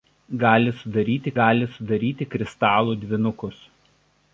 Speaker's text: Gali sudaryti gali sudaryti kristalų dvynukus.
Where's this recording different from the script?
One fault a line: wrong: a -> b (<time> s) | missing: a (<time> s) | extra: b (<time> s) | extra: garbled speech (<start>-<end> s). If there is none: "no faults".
no faults